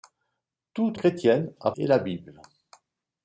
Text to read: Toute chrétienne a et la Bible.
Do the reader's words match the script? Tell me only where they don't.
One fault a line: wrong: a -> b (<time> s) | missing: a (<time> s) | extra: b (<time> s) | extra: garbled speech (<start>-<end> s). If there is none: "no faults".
no faults